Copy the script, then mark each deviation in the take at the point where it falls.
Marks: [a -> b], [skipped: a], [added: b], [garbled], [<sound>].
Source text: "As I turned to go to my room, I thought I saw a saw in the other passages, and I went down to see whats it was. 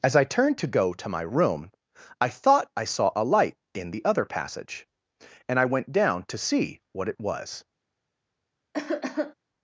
"As I turned to go to my room, I thought I saw a [saw -> light] in the other [passages, -> passage] and I went down to see [whats -> what] it was. [cough]